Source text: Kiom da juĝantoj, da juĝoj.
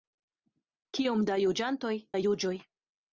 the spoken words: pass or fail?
pass